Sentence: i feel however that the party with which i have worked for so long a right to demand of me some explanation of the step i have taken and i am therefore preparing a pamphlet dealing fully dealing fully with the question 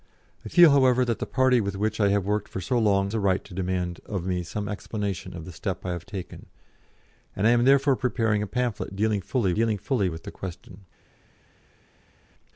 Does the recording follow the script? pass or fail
pass